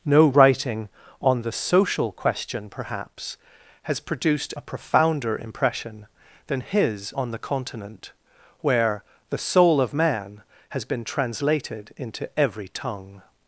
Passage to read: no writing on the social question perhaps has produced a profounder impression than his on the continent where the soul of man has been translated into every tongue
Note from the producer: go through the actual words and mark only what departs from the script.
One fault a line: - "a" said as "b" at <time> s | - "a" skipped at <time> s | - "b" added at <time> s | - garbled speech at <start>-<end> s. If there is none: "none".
none